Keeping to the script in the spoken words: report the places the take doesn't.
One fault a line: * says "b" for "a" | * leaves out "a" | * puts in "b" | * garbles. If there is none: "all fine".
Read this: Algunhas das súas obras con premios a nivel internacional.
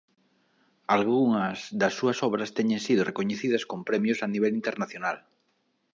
* puts in "teñen sido recoñecidas"